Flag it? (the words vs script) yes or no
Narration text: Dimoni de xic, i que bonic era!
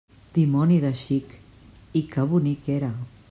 no